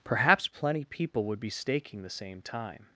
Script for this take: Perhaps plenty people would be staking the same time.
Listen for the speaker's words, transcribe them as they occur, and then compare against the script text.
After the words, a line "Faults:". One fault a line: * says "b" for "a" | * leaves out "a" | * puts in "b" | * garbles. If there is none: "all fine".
Perhaps plenty people would be staking the same time.
Faults:
all fine